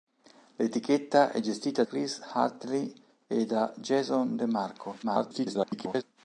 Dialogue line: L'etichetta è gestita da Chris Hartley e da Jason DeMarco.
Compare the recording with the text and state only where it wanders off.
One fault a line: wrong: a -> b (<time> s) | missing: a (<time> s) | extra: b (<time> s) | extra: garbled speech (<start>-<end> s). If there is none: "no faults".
missing: da (1.8 s)
extra: garbled speech (5.0-6.0 s)